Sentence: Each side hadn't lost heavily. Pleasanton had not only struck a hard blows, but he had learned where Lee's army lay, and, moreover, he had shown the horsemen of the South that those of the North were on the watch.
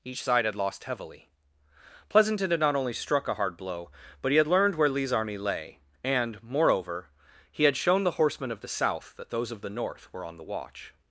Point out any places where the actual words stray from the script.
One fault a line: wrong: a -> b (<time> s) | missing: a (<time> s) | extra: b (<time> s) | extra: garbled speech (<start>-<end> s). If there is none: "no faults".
wrong: hadn't -> had (0.5 s)
wrong: blows -> blow (3.5 s)